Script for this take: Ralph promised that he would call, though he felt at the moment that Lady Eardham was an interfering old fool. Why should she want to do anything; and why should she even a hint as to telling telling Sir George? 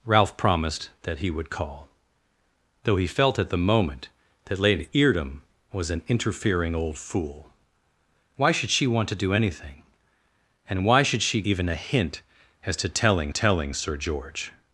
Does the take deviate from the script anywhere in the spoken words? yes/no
no